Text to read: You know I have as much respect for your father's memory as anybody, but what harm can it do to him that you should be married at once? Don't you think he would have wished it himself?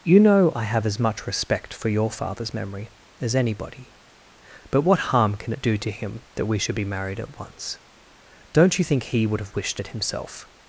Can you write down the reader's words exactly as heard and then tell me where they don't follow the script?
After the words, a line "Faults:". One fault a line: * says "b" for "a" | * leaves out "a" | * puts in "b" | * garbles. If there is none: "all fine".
You know I have as much respect for your father's memory as anybody, but what harm can it do to him that we should be married at once? Don't you think he would have wished it himself?
Faults:
* says "we" for "you"